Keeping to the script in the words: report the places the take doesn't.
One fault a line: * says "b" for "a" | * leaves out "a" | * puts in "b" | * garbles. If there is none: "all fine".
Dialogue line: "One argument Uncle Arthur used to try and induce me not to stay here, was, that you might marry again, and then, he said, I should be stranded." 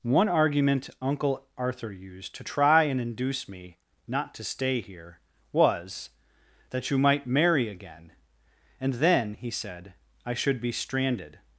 all fine